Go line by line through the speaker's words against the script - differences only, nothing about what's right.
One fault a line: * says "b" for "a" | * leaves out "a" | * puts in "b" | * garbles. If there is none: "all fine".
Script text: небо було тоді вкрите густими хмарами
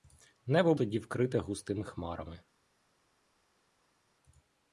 * leaves out "було"